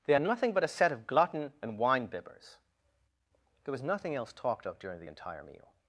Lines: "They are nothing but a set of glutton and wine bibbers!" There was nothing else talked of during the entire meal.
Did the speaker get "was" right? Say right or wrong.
right